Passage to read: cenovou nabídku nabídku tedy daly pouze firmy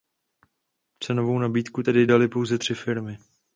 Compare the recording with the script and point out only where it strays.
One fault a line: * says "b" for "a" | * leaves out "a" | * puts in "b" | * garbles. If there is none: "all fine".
* leaves out "nabídku"
* puts in "tři"